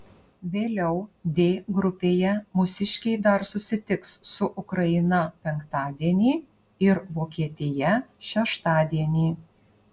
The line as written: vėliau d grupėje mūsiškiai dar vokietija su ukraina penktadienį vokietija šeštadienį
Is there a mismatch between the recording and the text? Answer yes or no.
yes